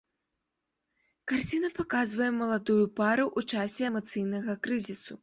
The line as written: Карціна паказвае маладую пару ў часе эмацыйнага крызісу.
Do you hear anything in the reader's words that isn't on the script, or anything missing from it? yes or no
no